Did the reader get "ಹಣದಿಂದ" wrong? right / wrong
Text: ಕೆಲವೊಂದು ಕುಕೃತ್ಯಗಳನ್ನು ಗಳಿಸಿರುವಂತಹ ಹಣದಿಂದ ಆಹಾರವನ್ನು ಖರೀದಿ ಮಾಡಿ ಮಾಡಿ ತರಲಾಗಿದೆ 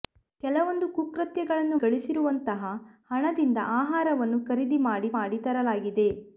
right